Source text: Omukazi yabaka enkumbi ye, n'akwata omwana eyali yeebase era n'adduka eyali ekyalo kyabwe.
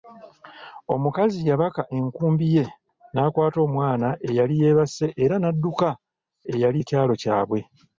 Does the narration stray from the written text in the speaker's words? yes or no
no